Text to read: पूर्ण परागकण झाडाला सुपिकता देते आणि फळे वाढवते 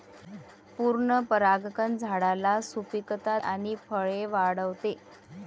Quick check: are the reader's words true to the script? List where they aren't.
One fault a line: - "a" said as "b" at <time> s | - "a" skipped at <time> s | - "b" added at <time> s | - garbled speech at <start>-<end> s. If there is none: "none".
- "देते" skipped at 3.4 s